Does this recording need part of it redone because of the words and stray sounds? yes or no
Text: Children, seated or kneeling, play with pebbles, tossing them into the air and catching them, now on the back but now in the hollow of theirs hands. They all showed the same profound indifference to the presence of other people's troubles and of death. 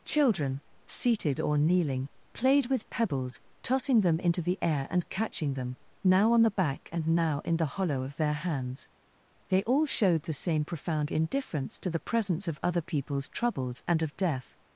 yes